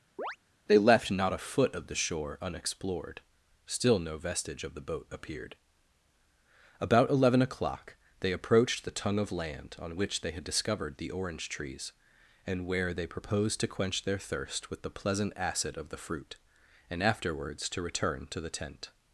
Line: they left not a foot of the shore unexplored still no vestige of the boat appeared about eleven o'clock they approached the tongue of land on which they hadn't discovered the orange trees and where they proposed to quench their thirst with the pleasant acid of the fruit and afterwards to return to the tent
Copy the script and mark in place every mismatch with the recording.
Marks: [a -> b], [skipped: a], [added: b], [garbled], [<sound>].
[chirp] they left not a foot of the shore unexplored still no vestige of the boat appeared about eleven o'clock they approached the tongue of land on which they [hadn't -> had] discovered the orange trees and where they proposed to quench their thirst with the pleasant acid of the fruit and afterwards to return to the tent